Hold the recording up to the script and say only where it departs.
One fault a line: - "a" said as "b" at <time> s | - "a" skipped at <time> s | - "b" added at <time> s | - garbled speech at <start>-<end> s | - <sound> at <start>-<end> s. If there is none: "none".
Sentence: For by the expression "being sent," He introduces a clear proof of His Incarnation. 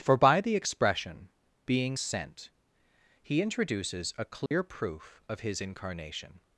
- dropout at 4.5-4.5 s